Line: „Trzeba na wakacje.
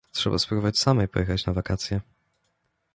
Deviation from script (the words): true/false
true